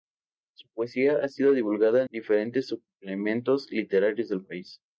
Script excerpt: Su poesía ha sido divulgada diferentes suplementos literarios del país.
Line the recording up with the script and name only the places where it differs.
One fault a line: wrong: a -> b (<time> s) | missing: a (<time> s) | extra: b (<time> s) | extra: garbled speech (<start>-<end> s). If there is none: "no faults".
no faults